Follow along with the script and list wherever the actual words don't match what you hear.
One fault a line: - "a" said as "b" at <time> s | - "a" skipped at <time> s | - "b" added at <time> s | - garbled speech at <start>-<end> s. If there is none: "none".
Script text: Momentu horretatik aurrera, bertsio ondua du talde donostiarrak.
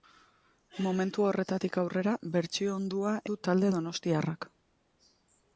none